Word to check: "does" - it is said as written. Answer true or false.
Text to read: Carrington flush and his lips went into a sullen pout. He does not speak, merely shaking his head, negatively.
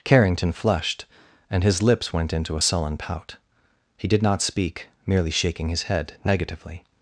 false